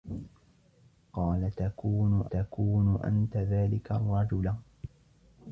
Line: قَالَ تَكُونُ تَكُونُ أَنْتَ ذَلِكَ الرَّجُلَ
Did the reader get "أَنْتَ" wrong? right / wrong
right